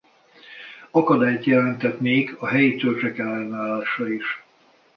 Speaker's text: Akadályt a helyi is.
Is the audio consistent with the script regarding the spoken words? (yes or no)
no